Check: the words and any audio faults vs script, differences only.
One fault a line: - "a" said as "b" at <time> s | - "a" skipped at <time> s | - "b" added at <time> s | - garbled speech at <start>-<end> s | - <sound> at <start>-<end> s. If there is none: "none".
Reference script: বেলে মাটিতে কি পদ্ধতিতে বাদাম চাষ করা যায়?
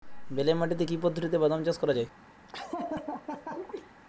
- laugh at 2.5-3.9 s